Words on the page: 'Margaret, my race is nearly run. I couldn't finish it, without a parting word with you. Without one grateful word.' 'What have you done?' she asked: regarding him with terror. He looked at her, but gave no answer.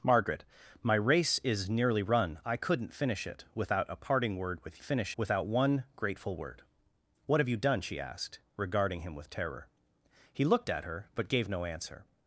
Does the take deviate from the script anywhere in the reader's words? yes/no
yes